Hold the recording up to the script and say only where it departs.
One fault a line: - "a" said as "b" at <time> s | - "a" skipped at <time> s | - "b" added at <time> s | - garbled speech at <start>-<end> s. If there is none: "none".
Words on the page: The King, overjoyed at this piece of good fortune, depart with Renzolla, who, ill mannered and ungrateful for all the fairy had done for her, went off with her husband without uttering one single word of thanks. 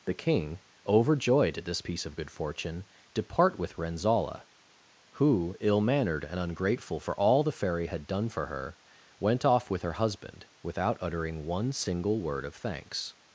none